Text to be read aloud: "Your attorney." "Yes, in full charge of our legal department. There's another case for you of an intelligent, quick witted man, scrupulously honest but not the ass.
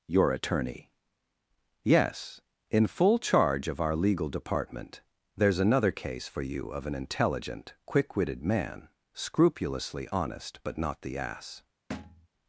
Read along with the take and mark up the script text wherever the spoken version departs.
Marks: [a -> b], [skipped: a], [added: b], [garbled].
"Your attorney." "Yes, in full charge of our legal department. There's another case for you of an intelligent, quick witted man, scrupulously honest but not the ass.